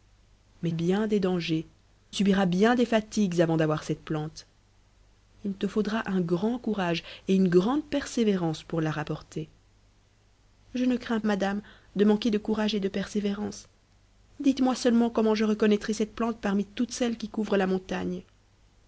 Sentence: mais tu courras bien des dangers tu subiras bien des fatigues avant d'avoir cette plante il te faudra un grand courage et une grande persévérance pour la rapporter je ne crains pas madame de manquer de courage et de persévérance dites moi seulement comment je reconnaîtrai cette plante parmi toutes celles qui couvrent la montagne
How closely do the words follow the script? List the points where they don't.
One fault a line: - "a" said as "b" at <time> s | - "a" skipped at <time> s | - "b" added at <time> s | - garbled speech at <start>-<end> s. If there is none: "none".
- "tu courras" skipped at 0.7 s
- "tu" skipped at 1.7 s
- "pas" skipped at 11.2 s